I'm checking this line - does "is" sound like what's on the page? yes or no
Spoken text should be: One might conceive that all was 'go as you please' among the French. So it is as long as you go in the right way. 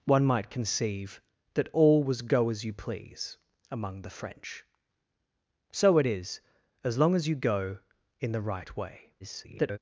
yes